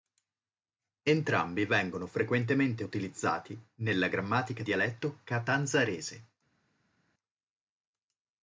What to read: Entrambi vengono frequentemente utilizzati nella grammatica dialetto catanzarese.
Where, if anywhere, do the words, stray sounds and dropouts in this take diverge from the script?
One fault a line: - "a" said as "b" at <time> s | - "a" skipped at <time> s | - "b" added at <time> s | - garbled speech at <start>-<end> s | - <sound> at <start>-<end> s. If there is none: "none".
none